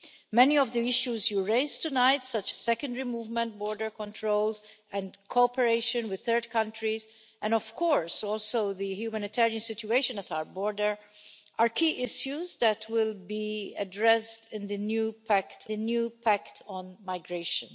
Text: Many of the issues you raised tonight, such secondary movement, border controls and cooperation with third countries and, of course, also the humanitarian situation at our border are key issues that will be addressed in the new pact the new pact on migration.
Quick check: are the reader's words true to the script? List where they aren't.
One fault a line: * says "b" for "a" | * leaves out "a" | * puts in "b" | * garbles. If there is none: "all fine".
all fine